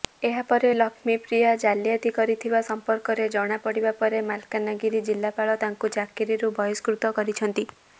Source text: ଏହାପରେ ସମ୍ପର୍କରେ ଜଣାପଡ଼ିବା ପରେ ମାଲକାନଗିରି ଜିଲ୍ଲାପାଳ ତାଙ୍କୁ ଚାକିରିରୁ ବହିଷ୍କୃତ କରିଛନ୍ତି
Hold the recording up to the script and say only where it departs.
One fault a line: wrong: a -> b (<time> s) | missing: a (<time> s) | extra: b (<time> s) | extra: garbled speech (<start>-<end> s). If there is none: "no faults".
extra: ଲକ୍ଷ୍ମୀପ୍ରିୟା ଜାଲିଆତି କରିଥିବା (0.7 s)